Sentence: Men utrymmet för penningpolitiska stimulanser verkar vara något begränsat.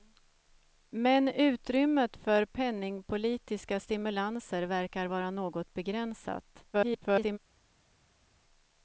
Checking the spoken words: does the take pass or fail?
fail